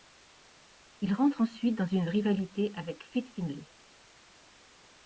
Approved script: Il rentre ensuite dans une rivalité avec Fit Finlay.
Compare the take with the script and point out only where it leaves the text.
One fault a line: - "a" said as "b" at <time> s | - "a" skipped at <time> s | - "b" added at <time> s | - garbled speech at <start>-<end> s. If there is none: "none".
none